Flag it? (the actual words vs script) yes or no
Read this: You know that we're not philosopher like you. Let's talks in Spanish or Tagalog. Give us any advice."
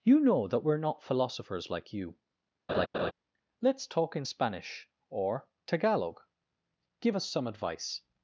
yes